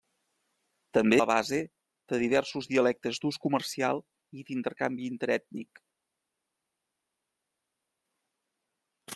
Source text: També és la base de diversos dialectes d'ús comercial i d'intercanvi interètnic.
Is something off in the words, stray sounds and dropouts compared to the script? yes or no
yes